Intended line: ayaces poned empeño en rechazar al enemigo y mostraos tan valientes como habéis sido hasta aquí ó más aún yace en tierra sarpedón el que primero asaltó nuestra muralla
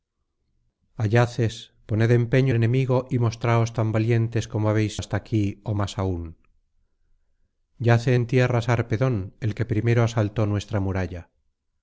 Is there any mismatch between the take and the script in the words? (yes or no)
yes